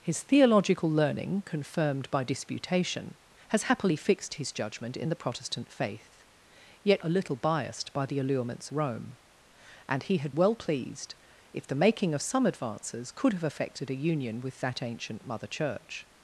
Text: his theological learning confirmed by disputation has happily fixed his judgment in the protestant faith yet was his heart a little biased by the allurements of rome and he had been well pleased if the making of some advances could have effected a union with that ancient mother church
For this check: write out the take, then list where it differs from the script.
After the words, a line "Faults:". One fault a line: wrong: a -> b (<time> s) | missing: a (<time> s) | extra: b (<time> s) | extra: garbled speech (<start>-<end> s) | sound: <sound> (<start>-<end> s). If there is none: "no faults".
his theological learning confirmed by disputation has happily fixed his judgment in the protestant faith yet a little biased by the allurements rome and he had well pleased if the making of some advances could have effected a union with that ancient mother church
Faults:
missing: was his heart (7.0 s)
missing: of (8.7 s)
missing: been (10.3 s)